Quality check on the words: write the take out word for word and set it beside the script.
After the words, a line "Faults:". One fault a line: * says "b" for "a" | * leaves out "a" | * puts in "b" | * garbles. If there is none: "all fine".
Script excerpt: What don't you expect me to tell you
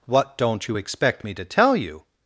What don't you expect me to tell you
Faults:
all fine